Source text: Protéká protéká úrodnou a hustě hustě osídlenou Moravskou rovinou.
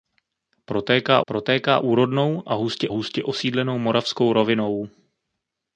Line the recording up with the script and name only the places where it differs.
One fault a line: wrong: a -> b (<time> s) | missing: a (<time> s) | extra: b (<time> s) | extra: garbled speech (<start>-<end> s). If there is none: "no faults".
no faults